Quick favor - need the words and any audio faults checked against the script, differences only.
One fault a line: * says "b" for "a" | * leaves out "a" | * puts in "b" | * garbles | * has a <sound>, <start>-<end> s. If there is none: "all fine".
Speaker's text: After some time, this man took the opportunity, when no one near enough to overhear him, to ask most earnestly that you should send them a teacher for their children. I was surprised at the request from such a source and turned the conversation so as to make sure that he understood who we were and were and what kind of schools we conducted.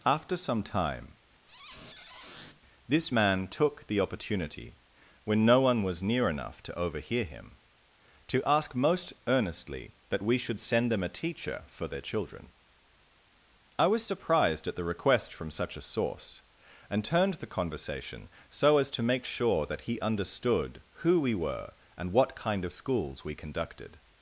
* has a squeak, 1.5-2.6 s
* puts in "was"
* says "we" for "you"
* leaves out "were and"